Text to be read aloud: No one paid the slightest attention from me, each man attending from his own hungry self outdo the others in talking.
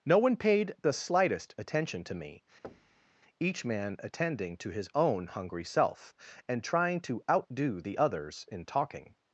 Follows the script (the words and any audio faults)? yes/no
no